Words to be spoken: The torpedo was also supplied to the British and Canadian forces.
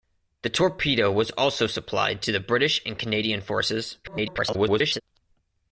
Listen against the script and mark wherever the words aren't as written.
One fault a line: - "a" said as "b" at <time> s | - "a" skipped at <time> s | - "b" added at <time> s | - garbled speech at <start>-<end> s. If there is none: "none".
- garbled speech at 4.0-5.0 s